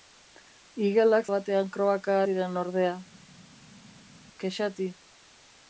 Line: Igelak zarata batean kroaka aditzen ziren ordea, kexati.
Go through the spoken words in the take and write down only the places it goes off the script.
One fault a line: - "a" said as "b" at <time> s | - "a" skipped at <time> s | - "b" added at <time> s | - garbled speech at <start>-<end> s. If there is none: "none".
- "zarata" skipped at 1.3 s
- "aditzen" skipped at 2.2 s